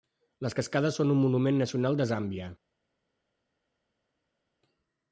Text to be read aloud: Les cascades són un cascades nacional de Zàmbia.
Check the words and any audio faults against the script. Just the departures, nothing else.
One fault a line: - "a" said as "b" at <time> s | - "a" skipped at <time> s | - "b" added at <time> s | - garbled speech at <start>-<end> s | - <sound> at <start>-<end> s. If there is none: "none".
- "cascades" said as "monument" at 1.2 s